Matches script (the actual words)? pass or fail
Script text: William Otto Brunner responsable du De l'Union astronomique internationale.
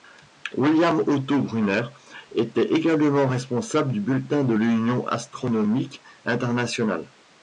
fail